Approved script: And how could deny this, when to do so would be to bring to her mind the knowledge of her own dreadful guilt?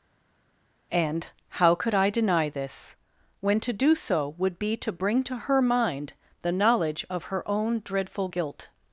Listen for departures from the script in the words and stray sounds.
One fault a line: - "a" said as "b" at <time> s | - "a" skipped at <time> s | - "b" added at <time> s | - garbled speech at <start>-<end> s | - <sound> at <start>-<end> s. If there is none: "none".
- "I" added at 1.9 s